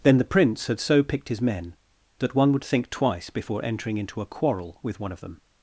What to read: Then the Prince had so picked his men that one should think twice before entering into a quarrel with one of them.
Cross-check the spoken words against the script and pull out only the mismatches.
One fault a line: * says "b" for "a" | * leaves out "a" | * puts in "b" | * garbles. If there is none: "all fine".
* says "would" for "should"